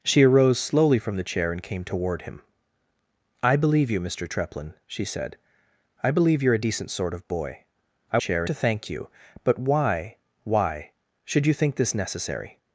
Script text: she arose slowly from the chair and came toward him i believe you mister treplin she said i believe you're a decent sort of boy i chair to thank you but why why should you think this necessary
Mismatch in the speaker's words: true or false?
false